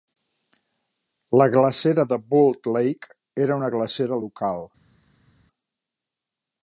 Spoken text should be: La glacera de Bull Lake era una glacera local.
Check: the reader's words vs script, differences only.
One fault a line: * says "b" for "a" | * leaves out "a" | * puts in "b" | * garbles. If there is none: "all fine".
all fine